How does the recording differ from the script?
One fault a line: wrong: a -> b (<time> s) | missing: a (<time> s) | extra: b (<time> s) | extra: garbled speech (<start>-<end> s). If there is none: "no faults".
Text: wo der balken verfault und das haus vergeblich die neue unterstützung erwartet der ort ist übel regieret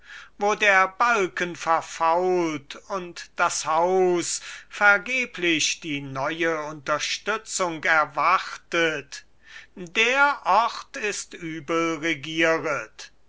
no faults